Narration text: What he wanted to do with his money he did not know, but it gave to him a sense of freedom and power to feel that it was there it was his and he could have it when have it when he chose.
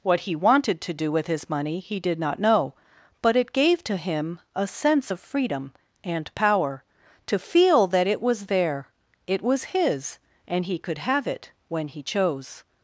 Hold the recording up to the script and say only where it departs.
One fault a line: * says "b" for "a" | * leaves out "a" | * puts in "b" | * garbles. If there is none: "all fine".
* leaves out "have it when"